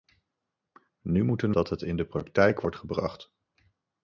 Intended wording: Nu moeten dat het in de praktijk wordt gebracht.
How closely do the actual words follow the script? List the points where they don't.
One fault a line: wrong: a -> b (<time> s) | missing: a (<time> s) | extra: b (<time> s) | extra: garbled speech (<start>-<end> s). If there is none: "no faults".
no faults